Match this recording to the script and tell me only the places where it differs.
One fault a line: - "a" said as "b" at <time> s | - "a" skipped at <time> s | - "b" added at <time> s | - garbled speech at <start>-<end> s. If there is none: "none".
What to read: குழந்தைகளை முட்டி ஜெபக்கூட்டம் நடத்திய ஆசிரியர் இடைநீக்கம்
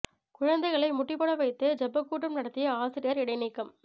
- "போட வைத்து" added at 1.1 s